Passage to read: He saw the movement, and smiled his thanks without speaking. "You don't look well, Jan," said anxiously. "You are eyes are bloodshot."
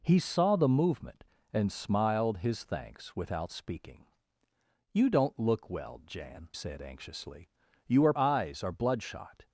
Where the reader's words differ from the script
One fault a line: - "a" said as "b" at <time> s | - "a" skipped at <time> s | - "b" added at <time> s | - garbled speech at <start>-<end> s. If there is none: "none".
none